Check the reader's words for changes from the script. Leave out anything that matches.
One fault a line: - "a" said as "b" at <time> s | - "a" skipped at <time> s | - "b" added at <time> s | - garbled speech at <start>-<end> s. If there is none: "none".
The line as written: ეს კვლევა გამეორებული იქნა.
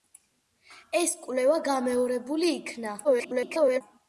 - garbled speech at 3.0-3.8 s